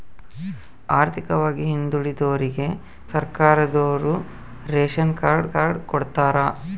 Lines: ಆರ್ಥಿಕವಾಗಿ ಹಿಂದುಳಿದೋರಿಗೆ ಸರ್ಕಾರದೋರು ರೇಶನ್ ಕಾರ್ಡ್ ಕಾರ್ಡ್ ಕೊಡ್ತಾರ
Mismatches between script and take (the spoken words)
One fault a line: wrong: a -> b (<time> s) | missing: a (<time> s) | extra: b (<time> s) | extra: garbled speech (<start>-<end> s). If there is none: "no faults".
no faults